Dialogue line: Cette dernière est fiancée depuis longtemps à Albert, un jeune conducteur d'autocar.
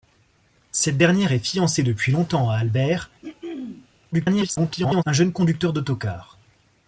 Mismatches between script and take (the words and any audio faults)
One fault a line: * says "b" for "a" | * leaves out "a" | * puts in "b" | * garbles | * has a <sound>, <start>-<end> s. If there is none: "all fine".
* has a throat clearing, 3.2-3.9 s
* garbles